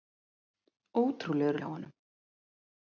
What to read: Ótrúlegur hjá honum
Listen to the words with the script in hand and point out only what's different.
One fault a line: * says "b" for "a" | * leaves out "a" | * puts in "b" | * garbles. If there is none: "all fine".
all fine